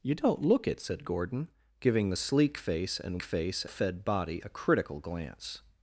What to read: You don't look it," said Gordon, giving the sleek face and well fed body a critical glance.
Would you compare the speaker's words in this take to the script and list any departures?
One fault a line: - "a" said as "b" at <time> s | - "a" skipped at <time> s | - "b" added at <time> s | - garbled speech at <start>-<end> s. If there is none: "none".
- "well" said as "face" at 3.2 s